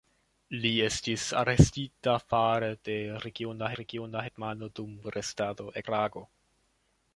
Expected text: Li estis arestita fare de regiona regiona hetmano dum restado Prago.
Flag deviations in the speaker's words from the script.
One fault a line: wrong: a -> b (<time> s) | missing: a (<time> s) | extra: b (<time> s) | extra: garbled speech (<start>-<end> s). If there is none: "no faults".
no faults